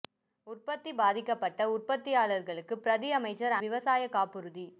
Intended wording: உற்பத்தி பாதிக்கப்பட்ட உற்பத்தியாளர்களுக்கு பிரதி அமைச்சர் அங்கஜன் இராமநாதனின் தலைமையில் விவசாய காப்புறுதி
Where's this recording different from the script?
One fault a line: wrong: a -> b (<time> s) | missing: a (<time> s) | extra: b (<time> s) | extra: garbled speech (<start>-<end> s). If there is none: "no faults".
missing: அங்கஜன் இராமநாதனின் தலைமையில் (3.6 s)